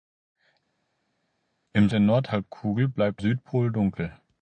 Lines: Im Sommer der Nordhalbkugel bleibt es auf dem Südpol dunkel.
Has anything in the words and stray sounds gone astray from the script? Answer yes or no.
yes